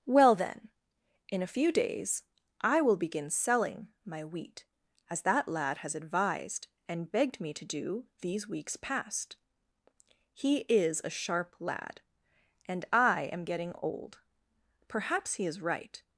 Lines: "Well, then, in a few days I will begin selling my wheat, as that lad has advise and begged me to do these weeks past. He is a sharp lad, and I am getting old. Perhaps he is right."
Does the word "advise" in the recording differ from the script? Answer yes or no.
yes